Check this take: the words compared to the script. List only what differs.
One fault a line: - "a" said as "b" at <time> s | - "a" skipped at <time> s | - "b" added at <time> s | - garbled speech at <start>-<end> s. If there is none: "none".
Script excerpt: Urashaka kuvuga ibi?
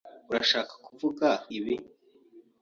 none